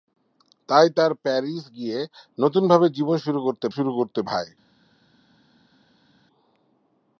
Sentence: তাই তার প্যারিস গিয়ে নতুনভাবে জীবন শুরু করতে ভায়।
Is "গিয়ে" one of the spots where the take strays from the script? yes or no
no